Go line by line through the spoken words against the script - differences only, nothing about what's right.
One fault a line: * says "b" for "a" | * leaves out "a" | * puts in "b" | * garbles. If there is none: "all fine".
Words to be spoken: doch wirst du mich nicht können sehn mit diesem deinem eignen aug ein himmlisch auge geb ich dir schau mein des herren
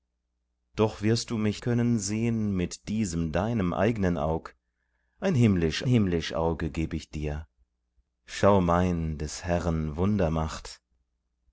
* leaves out "nicht"
* puts in "himmlisch"